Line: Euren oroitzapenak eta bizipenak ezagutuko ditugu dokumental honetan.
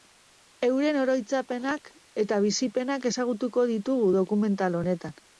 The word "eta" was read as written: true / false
true